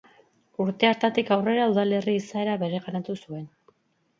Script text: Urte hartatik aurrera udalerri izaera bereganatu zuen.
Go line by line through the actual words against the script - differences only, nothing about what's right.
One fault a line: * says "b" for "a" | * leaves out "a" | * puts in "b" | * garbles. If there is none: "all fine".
all fine